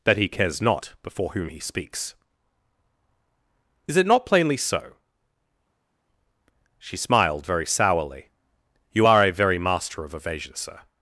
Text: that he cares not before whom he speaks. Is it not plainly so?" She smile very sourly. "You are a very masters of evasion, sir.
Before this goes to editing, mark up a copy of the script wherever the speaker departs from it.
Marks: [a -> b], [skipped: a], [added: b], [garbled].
that he cares not before whom he speaks. Is it not plainly so?" She [smile -> smiled] very sourly. "You are a very [masters -> master] of evasion, sir.